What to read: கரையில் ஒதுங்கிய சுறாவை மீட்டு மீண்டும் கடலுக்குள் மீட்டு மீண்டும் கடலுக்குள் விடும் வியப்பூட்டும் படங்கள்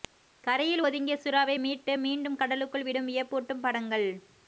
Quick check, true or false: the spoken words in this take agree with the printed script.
false